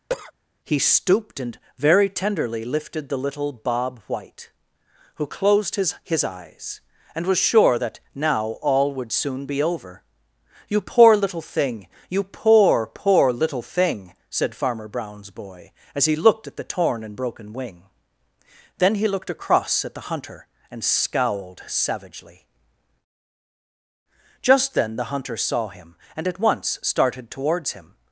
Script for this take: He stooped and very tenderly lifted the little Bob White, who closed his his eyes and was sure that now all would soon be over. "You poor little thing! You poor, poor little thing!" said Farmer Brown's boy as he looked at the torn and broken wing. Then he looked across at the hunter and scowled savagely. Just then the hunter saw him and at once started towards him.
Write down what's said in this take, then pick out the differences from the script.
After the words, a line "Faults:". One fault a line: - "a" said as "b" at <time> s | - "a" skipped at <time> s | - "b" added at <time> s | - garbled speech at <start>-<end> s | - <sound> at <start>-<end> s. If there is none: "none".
He stooped and very tenderly lifted the little Bob White, who closed his his eyes and was sure that now all would soon be over. "You poor little thing! You poor, poor little thing!" said Farmer Brown's boy as he looked at the torn and broken wing. Then he looked across at the hunter and scowled savagely. Just then the hunter saw him and at once started towards him.
Faults:
- cough at 0.1-0.3 s